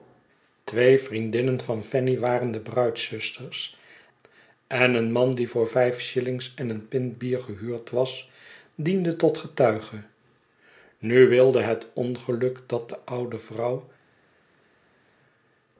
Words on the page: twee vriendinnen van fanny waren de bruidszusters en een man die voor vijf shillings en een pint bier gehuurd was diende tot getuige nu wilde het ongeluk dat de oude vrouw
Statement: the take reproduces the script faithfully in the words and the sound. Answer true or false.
true